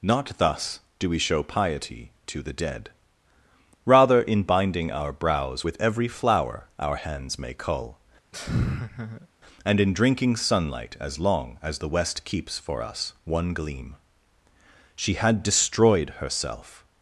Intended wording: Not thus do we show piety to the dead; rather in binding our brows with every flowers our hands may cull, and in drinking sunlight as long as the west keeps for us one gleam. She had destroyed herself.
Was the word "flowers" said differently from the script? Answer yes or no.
yes